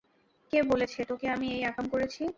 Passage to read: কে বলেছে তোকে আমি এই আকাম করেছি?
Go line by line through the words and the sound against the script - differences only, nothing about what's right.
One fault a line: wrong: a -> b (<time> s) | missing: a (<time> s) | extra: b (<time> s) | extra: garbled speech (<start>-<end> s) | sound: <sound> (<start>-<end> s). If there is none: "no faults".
no faults